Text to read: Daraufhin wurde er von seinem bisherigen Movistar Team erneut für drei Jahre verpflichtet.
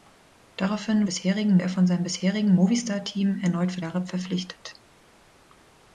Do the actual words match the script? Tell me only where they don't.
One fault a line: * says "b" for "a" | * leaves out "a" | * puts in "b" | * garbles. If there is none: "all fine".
* says "bisherigen" for "wurde"
* leaves out "drei"